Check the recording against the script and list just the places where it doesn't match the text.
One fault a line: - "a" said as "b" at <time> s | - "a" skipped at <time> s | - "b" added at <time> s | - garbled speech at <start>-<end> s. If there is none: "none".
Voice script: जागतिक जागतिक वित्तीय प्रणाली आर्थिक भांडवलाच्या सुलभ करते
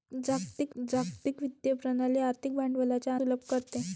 none